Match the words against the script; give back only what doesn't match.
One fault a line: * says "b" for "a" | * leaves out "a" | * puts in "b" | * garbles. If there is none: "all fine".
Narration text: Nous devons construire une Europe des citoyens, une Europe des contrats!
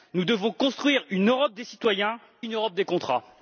all fine